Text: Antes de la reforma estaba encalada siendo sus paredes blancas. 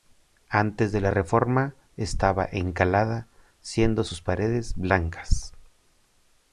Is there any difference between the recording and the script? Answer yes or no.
no